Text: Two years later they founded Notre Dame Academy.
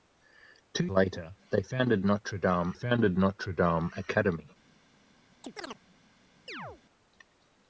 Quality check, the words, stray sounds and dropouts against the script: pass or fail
fail